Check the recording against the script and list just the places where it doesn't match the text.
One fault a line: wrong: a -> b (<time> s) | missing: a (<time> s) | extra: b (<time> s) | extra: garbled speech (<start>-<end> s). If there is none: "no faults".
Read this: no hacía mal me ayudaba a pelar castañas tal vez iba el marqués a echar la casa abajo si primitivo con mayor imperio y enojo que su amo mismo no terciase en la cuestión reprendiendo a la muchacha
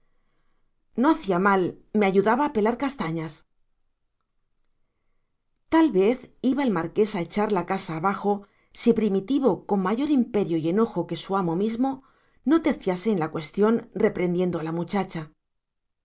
no faults